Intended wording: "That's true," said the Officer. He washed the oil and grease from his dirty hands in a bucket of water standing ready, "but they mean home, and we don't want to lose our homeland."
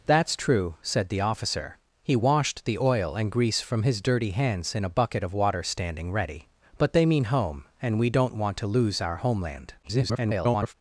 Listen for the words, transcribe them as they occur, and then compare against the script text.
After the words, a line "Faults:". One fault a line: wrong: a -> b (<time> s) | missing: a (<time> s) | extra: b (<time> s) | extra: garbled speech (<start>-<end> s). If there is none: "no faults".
"That's true," said the Officer. He washed the oil and grease from his dirty hands in a bucket of water standing ready, "but they mean home, and we don't want to lose our homeland." [garbled]
Faults:
extra: garbled speech (9.8-10.7 s)